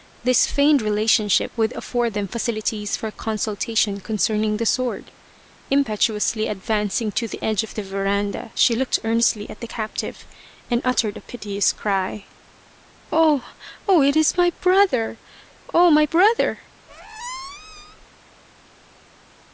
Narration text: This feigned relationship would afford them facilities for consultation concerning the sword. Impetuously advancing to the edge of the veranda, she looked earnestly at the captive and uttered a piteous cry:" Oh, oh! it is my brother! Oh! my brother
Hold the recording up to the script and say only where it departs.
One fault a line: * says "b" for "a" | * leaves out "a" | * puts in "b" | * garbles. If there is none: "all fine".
all fine